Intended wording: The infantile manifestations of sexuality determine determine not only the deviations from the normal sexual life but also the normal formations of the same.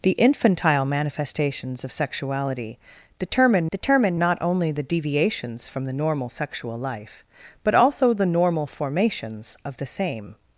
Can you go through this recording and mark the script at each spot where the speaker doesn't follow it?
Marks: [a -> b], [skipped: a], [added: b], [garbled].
The infantile manifestations of sexuality determine determine not only the deviations from the normal sexual life but also the normal formations of the same.